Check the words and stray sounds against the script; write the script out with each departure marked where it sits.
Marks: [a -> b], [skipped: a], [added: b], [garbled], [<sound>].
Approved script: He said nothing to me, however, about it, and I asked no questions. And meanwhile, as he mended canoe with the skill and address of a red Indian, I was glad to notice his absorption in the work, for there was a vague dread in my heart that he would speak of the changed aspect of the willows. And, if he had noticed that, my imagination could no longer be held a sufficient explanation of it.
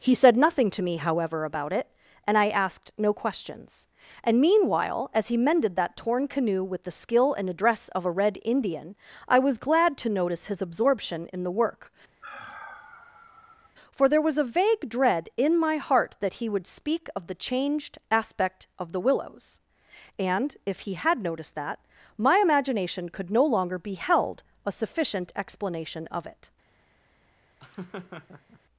He said nothing to me, however, about it, and I asked no questions. And meanwhile, as he mended [added: that torn] canoe with the skill and address of a red Indian, I was glad to notice his absorption in the work, [sigh] for there was a vague dread in my heart that he would speak of the changed aspect of the willows. And, if he had noticed that, my imagination could no longer be held a sufficient explanation of it. [laugh]